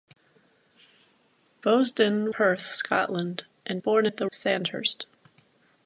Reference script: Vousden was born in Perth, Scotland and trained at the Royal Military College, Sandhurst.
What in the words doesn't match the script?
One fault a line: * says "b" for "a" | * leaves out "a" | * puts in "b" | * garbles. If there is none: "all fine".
* leaves out "was born in"
* says "born" for "trained"
* leaves out "Royal Military College"